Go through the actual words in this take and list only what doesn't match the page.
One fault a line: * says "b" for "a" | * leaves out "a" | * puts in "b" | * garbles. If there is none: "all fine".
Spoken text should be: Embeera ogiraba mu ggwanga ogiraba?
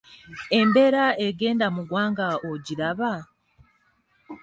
* says "egenda" for "ogiraba"